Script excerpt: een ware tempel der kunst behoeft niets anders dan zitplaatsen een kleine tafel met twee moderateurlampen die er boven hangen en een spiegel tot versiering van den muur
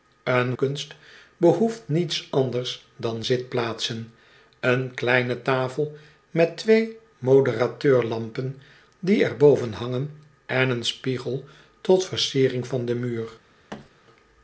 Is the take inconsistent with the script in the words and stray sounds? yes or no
yes